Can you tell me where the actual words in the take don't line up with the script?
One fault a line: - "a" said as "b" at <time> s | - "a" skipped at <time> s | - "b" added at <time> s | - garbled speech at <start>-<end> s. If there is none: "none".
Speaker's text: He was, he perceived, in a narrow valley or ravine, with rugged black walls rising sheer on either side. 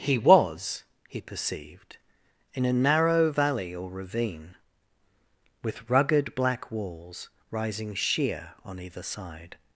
none